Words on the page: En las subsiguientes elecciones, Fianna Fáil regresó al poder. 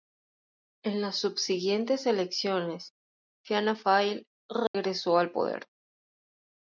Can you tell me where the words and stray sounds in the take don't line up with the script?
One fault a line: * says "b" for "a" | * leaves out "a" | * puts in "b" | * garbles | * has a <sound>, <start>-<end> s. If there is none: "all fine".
* has a dropout, 4.7-4.7 s